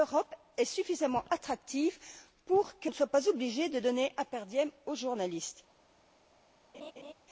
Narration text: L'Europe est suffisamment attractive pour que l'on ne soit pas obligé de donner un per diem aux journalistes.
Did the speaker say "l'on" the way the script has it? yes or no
no